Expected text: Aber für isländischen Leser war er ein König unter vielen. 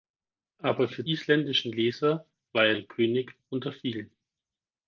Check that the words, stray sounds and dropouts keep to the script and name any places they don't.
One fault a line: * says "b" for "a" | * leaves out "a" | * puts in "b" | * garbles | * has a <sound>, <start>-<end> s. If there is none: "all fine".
all fine